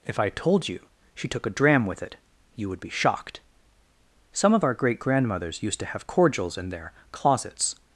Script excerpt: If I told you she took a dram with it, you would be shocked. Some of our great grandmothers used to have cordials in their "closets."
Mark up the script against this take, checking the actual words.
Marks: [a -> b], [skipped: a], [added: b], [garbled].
If I told you she took a dram with it, you would be shocked. Some of our great grandmothers used to have cordials in their "closets."